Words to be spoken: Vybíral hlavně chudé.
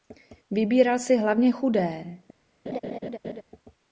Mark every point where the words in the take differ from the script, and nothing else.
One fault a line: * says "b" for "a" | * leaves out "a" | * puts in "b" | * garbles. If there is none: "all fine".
* puts in "si"